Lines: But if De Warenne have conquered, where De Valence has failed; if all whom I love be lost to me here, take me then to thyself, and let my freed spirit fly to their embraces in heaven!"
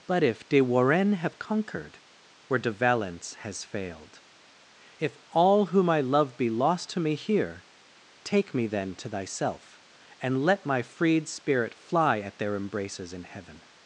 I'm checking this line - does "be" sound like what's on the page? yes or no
yes